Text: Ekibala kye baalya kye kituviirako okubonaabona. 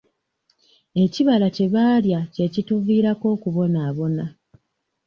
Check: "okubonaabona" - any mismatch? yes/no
no